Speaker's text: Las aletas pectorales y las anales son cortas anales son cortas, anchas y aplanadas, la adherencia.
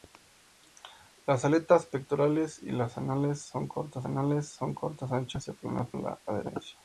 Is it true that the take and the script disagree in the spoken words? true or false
false